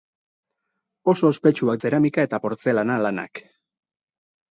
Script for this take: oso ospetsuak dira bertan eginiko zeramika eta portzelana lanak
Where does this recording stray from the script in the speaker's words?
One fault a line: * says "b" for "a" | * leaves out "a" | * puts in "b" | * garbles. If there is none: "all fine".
* leaves out "dira bertan eginiko"